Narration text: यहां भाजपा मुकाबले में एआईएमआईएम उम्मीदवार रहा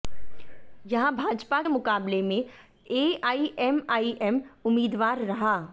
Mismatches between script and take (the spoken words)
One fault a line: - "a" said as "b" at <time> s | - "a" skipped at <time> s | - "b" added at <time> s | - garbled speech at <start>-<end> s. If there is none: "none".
none